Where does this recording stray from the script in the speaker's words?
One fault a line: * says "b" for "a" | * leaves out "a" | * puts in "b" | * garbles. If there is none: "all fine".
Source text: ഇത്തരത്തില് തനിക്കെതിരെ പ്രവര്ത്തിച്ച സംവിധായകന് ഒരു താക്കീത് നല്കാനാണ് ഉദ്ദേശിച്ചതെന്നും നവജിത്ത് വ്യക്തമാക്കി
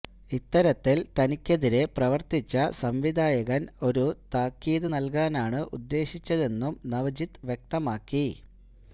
all fine